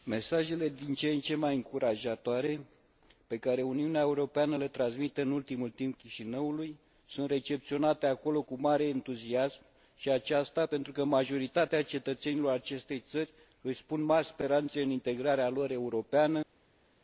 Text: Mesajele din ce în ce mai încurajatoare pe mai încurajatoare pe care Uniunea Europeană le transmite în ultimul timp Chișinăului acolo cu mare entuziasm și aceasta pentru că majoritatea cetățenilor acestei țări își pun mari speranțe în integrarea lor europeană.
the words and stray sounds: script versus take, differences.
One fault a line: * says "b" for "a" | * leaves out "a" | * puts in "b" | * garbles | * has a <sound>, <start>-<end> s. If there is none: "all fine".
* leaves out "mai încurajatoare pe"
* puts in "sunt recepționate"